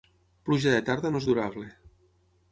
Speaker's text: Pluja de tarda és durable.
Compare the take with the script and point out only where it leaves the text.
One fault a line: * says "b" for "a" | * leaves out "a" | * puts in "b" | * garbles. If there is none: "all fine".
* puts in "no"